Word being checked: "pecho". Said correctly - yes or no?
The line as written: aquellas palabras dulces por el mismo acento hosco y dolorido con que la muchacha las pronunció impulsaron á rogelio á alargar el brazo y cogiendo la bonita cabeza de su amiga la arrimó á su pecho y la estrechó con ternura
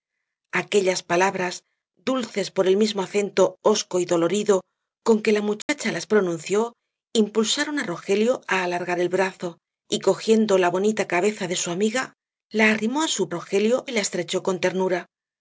no